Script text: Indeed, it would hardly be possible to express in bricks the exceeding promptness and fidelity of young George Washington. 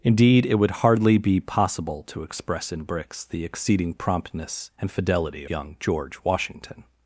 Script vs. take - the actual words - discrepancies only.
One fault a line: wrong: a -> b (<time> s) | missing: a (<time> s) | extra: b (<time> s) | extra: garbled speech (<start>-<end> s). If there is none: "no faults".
missing: of (5.5 s)